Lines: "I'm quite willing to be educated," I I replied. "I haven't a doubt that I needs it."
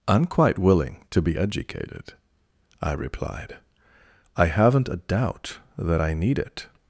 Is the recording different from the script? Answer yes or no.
yes